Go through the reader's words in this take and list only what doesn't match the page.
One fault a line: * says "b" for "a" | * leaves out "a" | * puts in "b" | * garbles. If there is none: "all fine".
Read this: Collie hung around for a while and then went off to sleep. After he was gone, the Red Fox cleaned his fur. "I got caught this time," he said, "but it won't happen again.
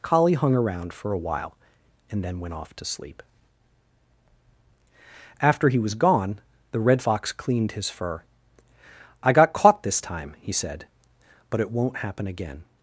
all fine